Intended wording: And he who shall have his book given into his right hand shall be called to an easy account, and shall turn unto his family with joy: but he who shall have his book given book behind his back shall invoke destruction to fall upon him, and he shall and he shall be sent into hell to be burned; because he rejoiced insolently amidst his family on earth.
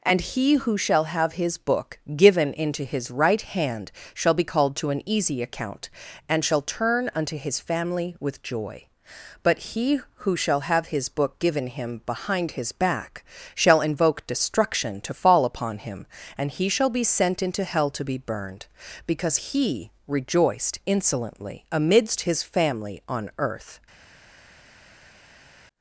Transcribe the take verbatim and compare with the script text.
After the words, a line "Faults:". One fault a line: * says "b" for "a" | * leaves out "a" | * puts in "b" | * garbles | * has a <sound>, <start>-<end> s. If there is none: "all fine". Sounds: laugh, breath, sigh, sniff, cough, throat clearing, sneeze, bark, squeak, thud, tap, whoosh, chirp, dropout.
And he who shall have his book given into his right hand shall be called to an easy account, and shall turn unto his family with joy: but he who shall have his book given him behind his back shall invoke destruction to fall upon him, and he shall be sent into hell to be burned; because he rejoiced insolently amidst his family on earth.
Faults:
* says "him" for "book"
* leaves out "and he shall"